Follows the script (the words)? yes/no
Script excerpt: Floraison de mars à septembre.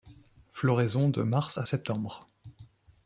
yes